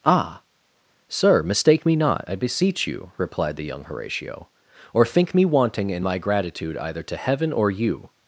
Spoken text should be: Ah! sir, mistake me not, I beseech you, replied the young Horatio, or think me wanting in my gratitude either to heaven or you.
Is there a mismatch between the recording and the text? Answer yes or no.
no